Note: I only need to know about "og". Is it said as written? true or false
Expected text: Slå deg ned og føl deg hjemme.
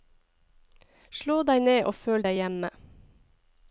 true